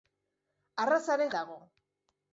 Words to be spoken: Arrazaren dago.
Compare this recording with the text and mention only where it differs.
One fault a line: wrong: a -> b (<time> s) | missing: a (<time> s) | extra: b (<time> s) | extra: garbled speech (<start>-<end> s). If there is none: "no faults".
no faults